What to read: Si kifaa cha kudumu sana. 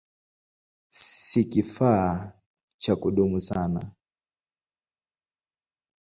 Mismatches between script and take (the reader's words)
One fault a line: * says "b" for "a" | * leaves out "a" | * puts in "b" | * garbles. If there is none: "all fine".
all fine